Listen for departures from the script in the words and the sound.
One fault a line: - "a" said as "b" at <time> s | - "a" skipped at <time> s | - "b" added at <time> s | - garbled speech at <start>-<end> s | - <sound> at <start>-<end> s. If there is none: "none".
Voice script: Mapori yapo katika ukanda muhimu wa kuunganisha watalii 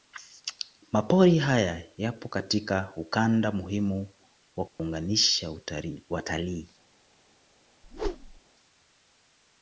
- "haya" added at 1.4 s
- dropout at 4.7-4.8 s
- whoosh at 7.8-8.4 s